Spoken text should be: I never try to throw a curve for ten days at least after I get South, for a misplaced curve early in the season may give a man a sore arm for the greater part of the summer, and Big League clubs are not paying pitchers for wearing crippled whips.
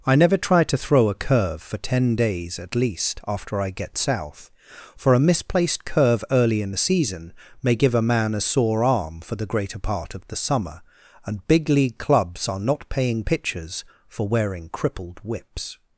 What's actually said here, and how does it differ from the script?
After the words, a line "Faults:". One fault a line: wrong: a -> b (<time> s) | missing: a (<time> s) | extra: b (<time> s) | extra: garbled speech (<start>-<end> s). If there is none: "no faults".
I never try to throw a curve for ten days at least after I get South, for a misplaced curve early in the season may give a man a sore arm for the greater part of the summer, and Big League clubs are not paying pitchers for wearing crippled whips.
Faults:
no faults